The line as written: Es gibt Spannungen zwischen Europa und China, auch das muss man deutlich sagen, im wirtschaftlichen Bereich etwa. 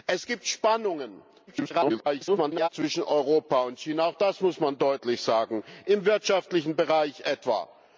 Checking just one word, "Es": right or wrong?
right